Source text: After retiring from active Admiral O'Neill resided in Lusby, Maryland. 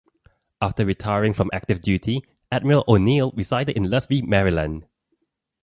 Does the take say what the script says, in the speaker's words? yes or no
no